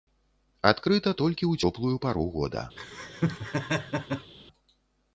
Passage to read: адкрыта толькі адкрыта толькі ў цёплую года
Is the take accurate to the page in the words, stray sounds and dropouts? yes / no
no